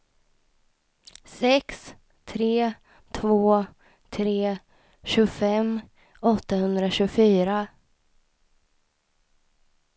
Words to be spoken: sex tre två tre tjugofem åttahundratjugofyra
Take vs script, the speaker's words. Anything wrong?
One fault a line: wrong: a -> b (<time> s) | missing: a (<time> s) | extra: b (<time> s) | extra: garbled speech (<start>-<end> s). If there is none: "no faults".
no faults